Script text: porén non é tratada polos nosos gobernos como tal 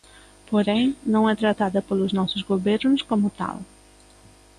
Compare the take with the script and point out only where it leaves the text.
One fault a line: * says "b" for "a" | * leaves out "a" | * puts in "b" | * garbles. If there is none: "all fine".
all fine